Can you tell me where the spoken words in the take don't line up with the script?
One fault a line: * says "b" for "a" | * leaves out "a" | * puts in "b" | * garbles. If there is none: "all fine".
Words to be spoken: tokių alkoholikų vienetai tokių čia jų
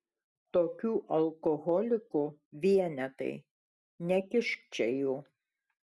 * says "nekišk" for "tokių"